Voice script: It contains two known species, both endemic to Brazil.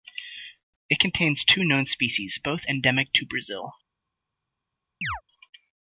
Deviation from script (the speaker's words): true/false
false